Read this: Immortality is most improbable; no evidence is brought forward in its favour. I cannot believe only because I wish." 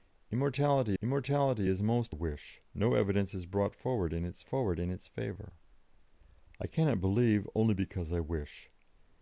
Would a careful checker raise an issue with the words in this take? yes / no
yes